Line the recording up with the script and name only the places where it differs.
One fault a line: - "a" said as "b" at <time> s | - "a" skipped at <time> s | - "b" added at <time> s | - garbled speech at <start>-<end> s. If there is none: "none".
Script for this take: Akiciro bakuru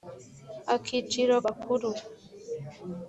none